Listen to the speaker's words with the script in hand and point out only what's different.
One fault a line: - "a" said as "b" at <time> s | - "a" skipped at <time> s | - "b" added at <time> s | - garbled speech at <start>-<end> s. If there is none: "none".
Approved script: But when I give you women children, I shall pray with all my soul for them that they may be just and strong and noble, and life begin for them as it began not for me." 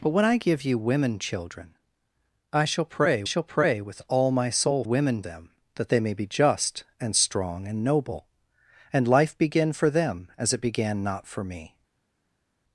- "shall pray" added at 3.2 s
- "for" said as "women" at 4.8 s